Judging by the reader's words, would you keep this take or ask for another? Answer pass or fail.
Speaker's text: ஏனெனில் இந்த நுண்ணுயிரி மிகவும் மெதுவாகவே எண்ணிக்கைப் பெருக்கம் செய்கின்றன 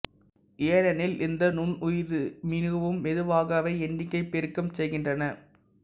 pass